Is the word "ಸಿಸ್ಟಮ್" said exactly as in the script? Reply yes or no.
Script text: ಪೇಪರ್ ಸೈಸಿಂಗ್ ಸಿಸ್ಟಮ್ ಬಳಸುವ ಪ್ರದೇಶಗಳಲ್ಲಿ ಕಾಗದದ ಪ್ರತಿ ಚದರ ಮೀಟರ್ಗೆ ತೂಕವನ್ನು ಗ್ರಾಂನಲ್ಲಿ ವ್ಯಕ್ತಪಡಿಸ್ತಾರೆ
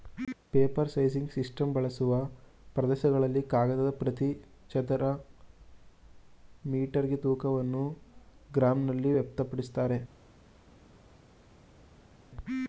yes